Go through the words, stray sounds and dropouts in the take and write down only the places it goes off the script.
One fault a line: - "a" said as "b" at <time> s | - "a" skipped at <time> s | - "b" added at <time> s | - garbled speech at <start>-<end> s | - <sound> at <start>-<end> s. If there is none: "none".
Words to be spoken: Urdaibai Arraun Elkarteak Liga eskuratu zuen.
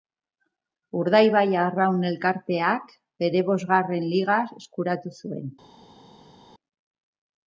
- "bere bosgarren" added at 3.2 s